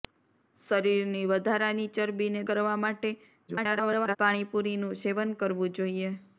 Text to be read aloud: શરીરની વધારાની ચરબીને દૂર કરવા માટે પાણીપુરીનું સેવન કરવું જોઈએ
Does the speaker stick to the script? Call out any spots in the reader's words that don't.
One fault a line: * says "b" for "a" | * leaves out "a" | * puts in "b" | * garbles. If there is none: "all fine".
* leaves out "દૂર"
* garbles